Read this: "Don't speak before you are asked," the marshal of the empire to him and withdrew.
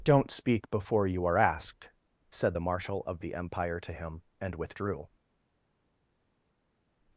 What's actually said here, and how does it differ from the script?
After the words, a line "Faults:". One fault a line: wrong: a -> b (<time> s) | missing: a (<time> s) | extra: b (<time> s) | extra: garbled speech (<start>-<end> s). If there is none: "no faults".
"Don't speak before you are asked," said the marshal of the empire to him and withdrew.
Faults:
extra: said (2.3 s)